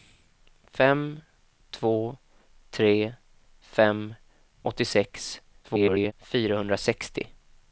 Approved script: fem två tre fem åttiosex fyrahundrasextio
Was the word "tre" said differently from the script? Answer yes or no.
no